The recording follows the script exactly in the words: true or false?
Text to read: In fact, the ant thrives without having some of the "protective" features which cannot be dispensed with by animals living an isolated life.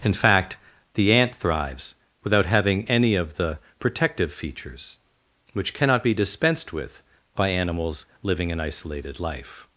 false